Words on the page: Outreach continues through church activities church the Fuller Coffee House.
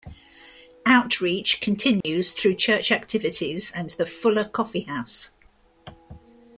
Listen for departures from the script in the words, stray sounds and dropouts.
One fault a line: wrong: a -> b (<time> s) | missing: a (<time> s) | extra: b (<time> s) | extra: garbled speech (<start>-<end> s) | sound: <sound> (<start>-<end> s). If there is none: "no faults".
sound: dropout (2.0-2.0 s)
wrong: church -> and (3.7 s)